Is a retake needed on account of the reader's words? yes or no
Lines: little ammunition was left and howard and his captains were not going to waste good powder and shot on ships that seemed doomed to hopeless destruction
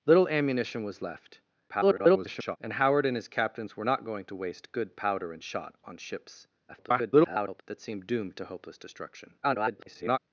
yes